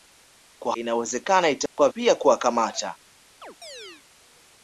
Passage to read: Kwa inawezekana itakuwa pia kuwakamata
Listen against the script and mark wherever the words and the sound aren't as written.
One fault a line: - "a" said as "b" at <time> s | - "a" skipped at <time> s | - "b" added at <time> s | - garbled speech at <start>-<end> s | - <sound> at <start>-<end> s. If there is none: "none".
- dropout at 1.7-1.8 s
- chirp at 3.4-4.0 s